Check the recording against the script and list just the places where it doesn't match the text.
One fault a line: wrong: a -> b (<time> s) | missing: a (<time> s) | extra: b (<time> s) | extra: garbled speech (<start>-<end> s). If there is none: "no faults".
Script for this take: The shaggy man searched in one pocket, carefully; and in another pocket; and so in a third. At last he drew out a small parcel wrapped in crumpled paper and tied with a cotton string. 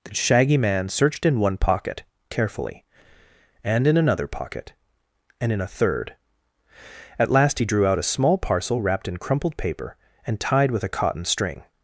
missing: so (5.5 s)